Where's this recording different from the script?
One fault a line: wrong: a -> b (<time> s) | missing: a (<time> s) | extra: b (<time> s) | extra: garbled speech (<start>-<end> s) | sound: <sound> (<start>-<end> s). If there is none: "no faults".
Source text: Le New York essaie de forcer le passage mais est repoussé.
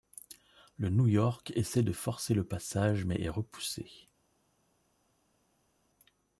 no faults